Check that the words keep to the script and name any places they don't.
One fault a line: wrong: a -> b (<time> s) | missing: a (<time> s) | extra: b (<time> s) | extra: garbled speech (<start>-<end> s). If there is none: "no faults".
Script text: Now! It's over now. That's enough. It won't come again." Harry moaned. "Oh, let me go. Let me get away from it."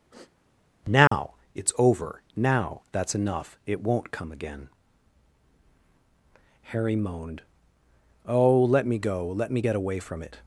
no faults